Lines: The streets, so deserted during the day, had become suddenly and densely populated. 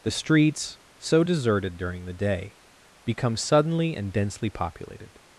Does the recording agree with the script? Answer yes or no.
no